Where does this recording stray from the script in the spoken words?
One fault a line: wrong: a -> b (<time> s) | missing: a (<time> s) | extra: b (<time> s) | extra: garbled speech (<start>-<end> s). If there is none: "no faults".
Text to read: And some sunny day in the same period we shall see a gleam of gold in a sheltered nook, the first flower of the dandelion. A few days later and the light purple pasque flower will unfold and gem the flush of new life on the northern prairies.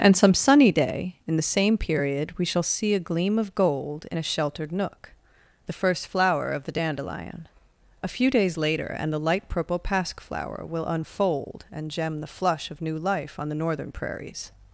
no faults